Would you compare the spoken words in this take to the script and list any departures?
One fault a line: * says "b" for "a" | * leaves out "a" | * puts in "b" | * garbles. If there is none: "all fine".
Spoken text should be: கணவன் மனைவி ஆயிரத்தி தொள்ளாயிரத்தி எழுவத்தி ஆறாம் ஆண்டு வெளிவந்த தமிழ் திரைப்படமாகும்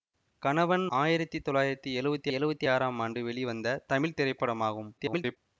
* leaves out "மனைவி"
* puts in "எழுவத்தி"
* garbles